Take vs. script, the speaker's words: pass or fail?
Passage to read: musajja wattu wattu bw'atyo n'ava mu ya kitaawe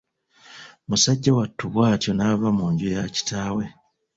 fail